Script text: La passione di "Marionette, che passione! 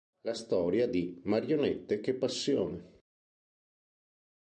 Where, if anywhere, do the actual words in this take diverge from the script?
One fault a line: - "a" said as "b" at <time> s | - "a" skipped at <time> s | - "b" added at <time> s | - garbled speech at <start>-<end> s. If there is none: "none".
- "passione" said as "storia" at 0.3 s